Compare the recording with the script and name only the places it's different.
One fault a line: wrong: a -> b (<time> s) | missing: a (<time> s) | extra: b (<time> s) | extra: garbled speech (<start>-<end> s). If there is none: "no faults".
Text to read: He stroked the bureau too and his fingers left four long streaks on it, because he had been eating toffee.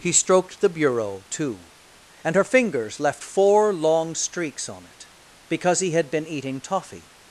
wrong: his -> her (2.4 s)